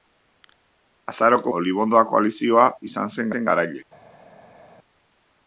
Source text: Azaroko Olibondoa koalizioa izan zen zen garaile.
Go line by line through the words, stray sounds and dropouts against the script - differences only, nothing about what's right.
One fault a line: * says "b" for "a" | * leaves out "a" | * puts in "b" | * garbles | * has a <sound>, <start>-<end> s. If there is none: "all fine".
all fine